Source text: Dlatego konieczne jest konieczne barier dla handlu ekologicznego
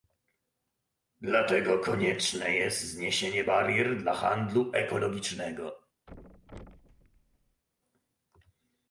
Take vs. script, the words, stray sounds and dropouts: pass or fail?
fail